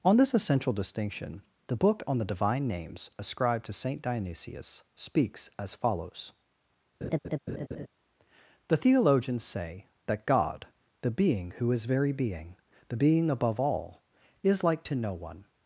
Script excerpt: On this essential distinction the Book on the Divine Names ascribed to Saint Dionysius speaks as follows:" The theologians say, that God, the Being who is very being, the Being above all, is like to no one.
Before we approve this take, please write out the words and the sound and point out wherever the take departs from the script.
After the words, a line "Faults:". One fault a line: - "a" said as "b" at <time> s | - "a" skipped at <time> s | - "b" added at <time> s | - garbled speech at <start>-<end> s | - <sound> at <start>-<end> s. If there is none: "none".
On this essential distinction the Book on the Divine Names ascribed to Saint Dionysius speaks as follows:" The theologians say, that God, the Being who is very being, the Being above all, is like to no one.
Faults:
- laugh at 7.0-7.9 s